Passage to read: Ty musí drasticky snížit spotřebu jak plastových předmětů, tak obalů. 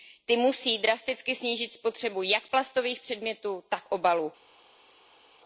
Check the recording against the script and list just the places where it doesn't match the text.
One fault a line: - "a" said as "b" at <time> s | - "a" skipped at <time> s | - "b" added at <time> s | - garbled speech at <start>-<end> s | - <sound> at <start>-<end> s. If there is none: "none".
none